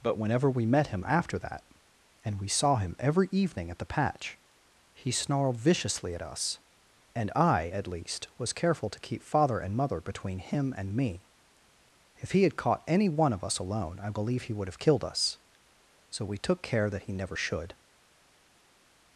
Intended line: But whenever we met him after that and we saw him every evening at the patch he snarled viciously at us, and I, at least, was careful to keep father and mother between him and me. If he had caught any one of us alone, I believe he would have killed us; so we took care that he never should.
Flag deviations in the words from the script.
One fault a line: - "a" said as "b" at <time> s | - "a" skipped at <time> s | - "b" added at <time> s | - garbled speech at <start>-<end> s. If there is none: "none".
none